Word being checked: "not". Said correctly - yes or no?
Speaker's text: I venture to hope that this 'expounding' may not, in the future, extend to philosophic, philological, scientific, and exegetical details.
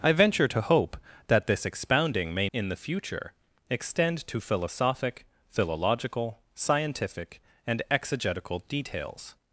no